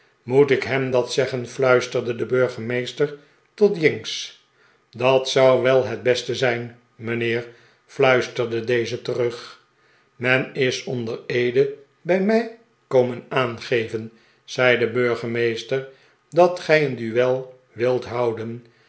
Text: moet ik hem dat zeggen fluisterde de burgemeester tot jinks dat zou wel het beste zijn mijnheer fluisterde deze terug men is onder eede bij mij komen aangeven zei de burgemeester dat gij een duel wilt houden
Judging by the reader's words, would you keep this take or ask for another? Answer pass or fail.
pass